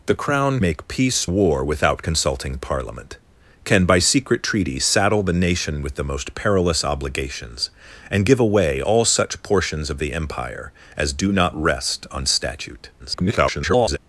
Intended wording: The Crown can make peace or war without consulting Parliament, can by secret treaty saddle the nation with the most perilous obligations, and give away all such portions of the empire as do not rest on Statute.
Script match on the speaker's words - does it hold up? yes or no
no